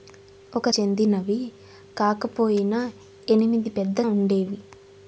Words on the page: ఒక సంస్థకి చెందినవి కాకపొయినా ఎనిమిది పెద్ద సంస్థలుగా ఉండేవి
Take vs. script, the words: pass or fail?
fail